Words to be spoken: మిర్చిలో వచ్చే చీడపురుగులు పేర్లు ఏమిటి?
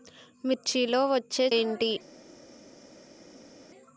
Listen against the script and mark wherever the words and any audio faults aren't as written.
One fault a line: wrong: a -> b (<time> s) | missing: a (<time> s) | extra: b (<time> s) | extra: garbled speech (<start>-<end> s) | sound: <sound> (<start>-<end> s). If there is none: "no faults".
missing: చీడపురుగులు పేర్లు (1.4 s)